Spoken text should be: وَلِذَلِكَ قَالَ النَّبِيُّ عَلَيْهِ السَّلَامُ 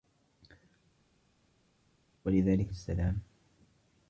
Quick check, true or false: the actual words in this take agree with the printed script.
false